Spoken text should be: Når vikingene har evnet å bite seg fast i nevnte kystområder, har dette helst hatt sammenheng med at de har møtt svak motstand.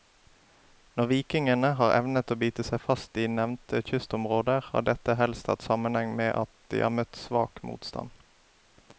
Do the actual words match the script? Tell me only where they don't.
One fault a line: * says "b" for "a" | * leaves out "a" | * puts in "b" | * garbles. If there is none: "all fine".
all fine